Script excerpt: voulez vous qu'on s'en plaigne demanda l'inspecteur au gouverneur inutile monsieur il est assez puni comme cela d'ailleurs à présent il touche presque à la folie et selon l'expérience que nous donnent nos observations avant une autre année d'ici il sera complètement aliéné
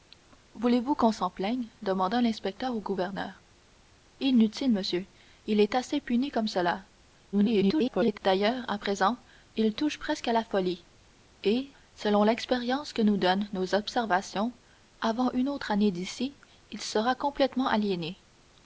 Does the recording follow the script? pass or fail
fail